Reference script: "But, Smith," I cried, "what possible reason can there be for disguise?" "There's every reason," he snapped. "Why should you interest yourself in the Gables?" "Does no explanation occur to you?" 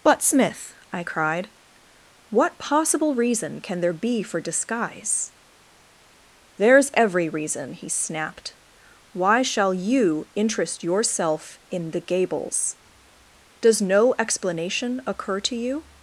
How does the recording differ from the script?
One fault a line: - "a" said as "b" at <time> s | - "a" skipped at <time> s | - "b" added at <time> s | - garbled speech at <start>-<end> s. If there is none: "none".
- "should" said as "shall" at 9.4 s